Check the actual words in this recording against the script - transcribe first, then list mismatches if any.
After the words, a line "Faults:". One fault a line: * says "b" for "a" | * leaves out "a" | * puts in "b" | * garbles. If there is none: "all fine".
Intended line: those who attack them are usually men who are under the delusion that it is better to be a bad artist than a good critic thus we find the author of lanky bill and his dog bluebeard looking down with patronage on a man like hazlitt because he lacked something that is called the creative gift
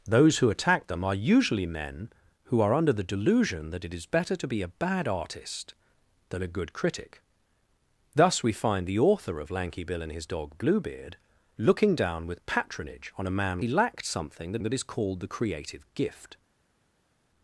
those who attack them are usually men who are under the delusion that it is better to be a bad artist than a good critic thus we find the author of lanky bill and his dog bluebeard looking down with patronage on a man he lacked something that that is called the creative gift
Faults:
* leaves out "like hazlitt because"
* puts in "that"